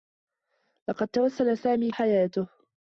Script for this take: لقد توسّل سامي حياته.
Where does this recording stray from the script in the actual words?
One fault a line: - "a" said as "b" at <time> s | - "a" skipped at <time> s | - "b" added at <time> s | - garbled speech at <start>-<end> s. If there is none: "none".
none